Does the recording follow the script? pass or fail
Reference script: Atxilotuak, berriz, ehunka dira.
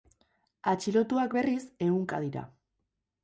pass